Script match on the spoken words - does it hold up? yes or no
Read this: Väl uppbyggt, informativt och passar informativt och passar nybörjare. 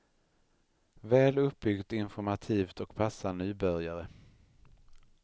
no